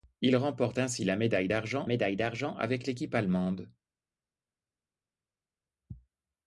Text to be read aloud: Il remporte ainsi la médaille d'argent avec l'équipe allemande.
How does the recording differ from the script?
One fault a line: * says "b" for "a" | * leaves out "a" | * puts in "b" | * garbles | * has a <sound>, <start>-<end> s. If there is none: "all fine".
* puts in "médaille d'argent"